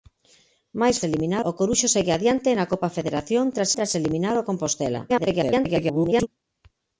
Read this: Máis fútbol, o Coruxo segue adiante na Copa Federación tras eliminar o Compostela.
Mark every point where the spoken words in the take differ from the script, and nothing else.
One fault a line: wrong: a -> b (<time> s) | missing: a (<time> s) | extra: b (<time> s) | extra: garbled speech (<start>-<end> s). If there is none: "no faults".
wrong: fútbol -> eliminar (1.1 s)
extra: tras (3.8 s)
extra: garbled speech (5.1-6.3 s)